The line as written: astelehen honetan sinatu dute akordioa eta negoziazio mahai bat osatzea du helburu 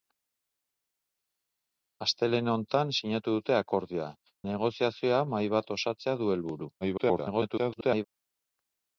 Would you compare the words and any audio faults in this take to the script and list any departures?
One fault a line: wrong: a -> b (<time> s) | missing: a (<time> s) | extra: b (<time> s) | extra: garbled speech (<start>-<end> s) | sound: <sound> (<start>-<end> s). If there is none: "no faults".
missing: eta (4.1 s)
extra: garbled speech (6.8-8.1 s)